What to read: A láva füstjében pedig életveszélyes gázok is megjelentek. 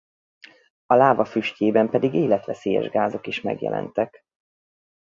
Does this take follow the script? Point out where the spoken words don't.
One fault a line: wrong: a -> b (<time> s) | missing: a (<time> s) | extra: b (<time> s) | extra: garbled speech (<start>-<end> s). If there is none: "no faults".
no faults